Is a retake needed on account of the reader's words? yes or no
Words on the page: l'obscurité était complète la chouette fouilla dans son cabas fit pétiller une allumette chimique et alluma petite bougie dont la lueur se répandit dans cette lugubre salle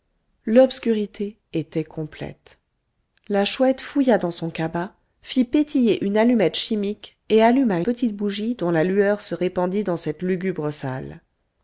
no